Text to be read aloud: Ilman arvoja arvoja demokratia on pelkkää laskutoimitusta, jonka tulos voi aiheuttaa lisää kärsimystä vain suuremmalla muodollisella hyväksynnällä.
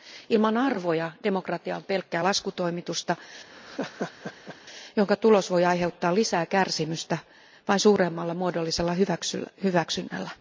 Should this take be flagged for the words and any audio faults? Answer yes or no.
yes